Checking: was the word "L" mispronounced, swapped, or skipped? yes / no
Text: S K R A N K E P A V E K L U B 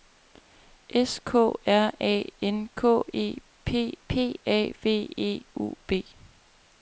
yes